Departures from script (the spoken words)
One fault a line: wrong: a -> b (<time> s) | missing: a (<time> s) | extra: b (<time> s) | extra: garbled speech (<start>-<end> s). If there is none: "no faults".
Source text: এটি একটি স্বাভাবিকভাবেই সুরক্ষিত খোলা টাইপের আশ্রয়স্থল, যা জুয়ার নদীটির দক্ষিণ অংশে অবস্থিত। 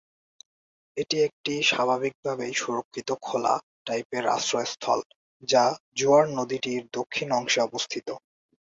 no faults